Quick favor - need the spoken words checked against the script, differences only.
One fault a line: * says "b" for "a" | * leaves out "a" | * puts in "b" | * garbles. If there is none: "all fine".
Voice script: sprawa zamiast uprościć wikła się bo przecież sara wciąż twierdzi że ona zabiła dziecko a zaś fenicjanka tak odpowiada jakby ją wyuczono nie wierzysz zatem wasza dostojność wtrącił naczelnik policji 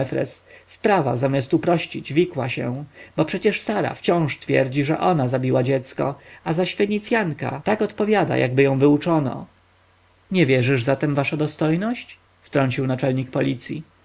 all fine